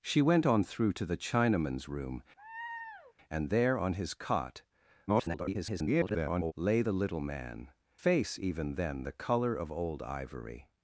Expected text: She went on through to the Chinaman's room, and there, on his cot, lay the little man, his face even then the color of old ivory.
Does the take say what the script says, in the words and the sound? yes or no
no